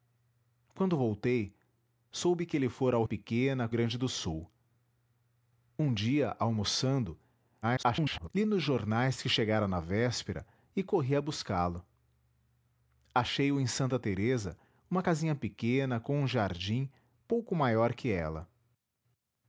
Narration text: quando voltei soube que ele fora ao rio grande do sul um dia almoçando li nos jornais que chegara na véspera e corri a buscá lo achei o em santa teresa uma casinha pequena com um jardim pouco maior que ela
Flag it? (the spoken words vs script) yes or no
yes